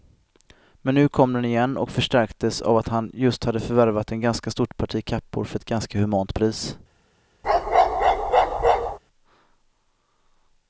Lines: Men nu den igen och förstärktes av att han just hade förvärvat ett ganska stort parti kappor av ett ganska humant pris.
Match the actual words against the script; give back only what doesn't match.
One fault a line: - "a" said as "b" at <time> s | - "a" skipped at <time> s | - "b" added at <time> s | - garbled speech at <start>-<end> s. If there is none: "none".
- "kom" added at 1.1 s
- "av" said as "för" at 5.4 s